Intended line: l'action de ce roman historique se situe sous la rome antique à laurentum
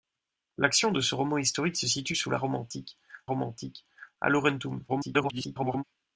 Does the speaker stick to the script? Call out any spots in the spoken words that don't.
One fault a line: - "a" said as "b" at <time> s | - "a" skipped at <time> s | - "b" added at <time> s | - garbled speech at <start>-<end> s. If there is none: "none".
- "rome antique" added at 3.2 s
- garbled speech at 4.9-5.8 s